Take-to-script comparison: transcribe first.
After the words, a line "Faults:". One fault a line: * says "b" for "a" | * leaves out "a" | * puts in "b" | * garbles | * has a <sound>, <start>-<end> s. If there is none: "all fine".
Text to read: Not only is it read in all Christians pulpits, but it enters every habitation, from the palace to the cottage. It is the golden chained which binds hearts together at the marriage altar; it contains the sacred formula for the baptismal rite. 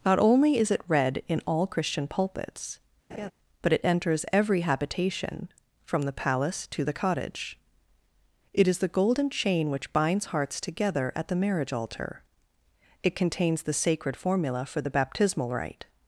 Not only is it read in all Christian pulpits, but it enters every habitation, from the palace to the cottage. It is the golden chain which binds hearts together at the marriage altar; it contains the sacred formula for the baptismal rite.
Faults:
* says "Christian" for "Christians"
* has a laugh, 3.1-3.3 s
* says "chain" for "chained"